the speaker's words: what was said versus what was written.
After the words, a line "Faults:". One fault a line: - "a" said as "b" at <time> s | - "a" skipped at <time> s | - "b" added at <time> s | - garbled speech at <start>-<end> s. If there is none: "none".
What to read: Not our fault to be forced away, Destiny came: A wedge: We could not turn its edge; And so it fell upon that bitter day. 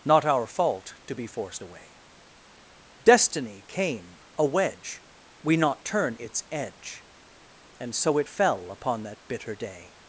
Not our fault to be forced away, Destiny came: A wedge: We not turn its edge; And so it fell upon that bitter day.
Faults:
- "could" skipped at 5.6 s